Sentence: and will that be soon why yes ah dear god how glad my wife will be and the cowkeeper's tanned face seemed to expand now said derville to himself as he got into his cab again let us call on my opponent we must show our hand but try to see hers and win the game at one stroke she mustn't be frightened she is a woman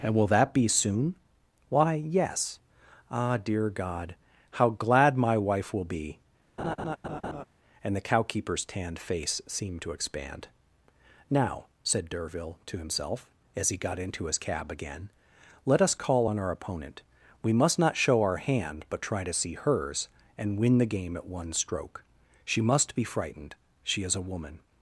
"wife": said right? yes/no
yes